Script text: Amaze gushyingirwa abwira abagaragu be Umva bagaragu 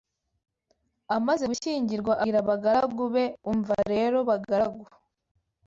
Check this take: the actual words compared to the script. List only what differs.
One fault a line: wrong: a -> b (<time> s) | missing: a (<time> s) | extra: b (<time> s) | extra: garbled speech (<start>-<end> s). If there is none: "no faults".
extra: rero (3.9 s)